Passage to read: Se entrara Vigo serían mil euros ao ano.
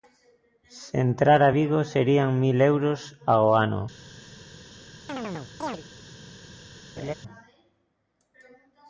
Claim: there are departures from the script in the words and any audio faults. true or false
true